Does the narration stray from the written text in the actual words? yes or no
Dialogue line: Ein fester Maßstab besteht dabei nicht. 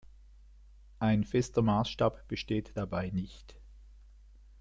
no